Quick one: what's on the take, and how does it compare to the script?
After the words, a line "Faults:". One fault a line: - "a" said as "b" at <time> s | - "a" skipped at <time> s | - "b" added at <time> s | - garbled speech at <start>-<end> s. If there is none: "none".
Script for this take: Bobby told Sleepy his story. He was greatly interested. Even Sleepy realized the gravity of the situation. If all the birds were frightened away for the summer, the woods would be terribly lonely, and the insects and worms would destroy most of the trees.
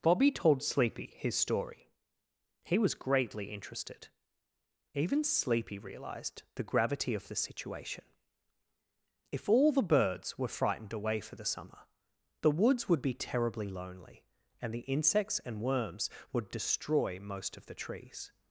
Bobby told Sleepy his story. He was greatly interested. Even Sleepy realized the gravity of the situation. If all the birds were frightened away for the summer, the woods would be terribly lonely, and the insects and worms would destroy most of the trees.
Faults:
none